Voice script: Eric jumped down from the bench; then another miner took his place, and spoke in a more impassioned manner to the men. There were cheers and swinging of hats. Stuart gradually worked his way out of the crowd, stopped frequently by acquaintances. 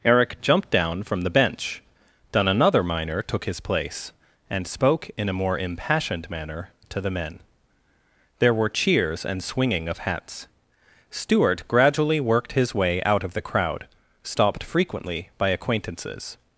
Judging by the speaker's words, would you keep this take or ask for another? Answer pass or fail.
pass